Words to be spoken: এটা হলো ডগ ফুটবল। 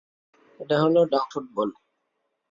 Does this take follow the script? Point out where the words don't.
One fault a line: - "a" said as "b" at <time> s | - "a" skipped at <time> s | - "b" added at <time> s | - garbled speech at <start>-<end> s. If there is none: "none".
none